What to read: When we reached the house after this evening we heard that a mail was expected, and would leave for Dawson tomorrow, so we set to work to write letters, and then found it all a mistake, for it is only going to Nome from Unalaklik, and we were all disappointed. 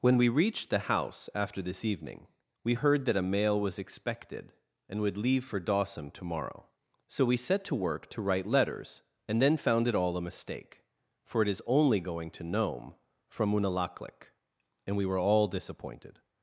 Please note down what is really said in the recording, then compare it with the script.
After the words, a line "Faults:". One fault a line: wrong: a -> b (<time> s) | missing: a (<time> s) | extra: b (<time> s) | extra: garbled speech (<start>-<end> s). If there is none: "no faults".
When we reached the house after this evening we heard that a mail was expected, and would leave for Dawson tomorrow, so we set to work to write letters, and then found it all a mistake, for it is only going to Nome from Unalaklik, and we were all disappointed.
Faults:
no faults